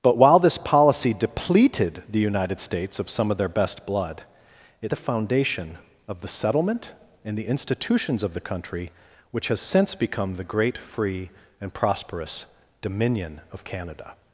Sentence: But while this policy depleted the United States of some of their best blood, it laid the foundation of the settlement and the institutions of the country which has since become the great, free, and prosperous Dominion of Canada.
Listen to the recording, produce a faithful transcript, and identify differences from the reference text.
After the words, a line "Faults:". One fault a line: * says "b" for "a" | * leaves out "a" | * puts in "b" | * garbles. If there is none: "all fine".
But while this policy depleted the United States of some of their best blood, it the foundation of the settlement and the institutions of the country which has since become the great, free, and prosperous Dominion of Canada.
Faults:
* leaves out "laid"